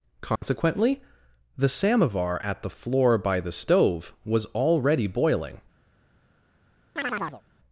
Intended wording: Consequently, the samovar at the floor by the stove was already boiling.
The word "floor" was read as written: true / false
true